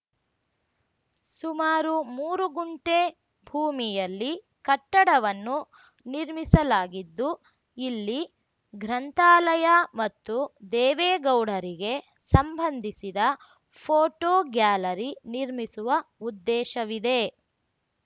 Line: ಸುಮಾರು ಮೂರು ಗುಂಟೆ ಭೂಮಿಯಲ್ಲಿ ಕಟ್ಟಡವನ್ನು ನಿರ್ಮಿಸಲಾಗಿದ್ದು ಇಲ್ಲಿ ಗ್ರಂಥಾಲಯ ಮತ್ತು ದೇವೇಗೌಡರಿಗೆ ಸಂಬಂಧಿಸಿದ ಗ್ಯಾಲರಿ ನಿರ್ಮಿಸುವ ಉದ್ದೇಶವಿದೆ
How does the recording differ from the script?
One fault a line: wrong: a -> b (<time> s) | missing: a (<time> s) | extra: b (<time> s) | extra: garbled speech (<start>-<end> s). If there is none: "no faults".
extra: ಫೋಟೋ (13.8 s)